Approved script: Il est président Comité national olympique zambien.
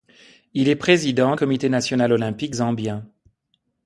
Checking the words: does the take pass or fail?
pass